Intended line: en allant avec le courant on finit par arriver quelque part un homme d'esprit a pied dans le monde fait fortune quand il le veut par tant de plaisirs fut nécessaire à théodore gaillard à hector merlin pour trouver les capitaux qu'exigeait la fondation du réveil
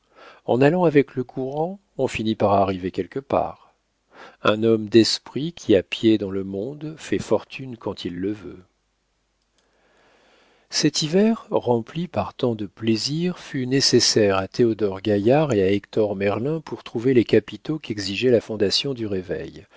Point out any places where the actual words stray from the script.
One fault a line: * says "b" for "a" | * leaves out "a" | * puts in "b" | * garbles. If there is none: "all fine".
* puts in "qui"
* puts in "cet hiver rempli"
* puts in "et"